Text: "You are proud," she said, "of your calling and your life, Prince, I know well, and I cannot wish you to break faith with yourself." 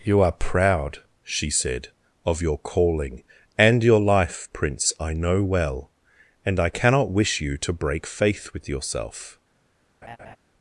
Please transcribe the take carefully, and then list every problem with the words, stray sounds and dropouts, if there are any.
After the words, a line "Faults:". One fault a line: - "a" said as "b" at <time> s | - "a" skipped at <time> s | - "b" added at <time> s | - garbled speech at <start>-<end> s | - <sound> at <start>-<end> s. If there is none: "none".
"You are proud," she said, "of your calling and your life, Prince, I know well, and I cannot wish you to break faith with yourself."
Faults:
- laugh at 10.0-10.4 s